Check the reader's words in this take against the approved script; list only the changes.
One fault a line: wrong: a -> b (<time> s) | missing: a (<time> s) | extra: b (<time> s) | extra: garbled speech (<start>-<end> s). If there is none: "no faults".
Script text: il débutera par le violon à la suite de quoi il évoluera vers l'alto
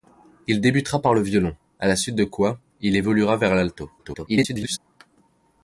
extra: garbled speech (4.0-4.8 s)